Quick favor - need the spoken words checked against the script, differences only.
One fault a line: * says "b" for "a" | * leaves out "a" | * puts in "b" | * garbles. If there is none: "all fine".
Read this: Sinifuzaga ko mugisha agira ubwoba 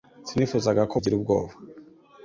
* leaves out "mugisha"